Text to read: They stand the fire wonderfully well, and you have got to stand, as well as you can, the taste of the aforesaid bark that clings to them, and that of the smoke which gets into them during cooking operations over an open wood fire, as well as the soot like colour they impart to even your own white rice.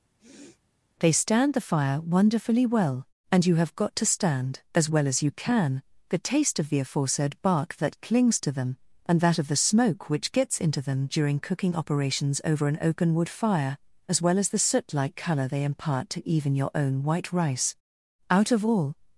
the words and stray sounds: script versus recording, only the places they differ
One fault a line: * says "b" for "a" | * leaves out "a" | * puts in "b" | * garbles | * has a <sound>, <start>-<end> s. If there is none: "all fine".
* has a sniff, 0.2-0.6 s
* puts in "Out of all"